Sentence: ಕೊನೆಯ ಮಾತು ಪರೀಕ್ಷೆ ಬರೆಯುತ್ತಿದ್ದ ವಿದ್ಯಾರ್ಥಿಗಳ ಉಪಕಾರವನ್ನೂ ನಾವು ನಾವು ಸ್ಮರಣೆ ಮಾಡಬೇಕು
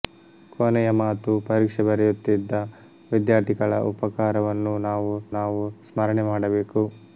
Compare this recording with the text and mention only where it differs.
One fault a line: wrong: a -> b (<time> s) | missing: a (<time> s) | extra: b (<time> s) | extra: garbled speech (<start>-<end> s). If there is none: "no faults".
no faults